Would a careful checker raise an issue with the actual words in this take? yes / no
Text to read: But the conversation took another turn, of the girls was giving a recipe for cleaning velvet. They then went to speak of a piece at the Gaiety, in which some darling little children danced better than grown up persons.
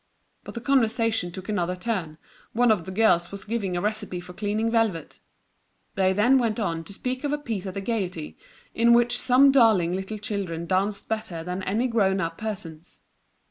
yes